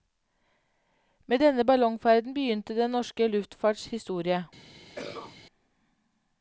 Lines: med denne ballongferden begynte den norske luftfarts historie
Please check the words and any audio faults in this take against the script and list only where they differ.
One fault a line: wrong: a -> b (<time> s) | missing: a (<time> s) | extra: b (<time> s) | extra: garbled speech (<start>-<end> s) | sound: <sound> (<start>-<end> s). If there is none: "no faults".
sound: cough (5.0-5.4 s)